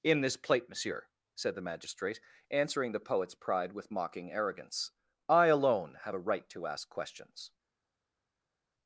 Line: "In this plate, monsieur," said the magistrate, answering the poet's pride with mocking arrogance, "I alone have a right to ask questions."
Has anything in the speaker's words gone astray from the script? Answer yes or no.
no